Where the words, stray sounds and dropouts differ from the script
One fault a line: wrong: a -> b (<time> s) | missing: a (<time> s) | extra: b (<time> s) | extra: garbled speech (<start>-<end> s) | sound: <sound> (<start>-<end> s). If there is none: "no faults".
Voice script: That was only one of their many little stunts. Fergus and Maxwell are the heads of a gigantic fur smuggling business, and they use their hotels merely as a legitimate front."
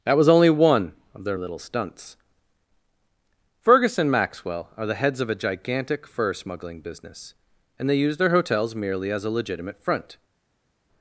missing: many (1.4 s)